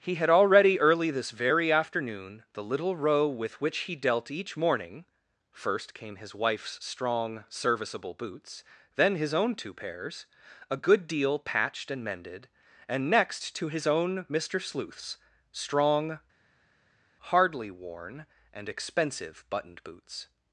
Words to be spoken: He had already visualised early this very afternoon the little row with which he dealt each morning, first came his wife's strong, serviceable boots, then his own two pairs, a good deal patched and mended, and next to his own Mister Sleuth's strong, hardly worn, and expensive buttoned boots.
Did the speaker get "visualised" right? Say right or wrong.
wrong